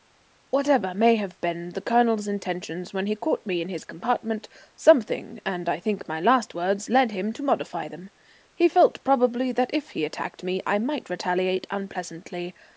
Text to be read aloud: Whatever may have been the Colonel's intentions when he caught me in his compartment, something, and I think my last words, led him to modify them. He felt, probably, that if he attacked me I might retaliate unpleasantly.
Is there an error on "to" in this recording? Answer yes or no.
no